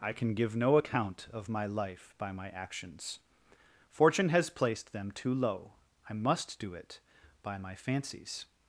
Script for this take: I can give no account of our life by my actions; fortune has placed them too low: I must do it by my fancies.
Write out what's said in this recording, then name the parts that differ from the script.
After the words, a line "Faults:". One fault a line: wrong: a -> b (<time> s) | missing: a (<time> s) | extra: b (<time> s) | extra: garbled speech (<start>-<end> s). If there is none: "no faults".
I can give no account of my life by my actions; fortune has placed them too low: I must do it by my fancies.
Faults:
wrong: our -> my (1.5 s)